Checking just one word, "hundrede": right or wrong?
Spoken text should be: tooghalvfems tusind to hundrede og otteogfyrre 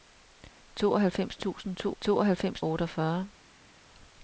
wrong